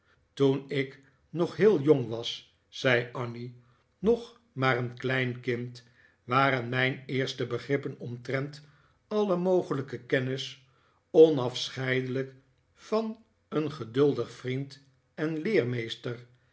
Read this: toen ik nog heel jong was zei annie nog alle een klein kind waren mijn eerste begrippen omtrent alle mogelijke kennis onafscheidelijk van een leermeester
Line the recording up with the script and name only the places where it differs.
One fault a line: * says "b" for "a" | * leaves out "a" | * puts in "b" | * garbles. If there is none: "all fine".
* says "maar" for "alle"
* puts in "geduldig vriend en"